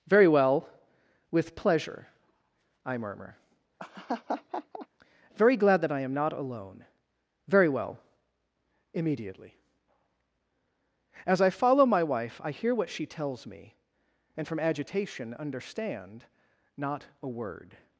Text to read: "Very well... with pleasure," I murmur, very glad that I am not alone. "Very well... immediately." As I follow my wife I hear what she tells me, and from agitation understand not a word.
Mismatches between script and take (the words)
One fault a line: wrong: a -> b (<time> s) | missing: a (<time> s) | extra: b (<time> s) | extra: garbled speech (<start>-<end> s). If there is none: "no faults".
no faults